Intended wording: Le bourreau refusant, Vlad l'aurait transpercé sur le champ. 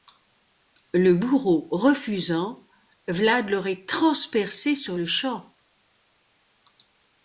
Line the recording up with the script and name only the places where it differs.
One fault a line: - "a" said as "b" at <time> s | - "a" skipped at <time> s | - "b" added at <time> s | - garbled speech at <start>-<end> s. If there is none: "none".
none